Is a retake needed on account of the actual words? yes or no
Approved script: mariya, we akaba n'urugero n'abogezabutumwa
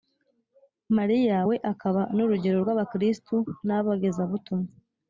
yes